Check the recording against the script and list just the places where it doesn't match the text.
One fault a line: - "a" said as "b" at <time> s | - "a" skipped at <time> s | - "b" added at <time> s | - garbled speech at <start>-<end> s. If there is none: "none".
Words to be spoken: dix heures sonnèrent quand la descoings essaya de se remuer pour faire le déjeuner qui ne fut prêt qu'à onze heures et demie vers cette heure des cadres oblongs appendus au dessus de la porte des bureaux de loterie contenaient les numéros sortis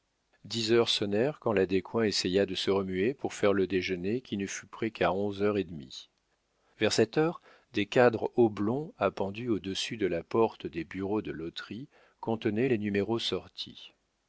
none